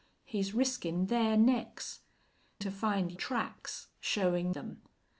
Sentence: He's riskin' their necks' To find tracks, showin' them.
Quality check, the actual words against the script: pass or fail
pass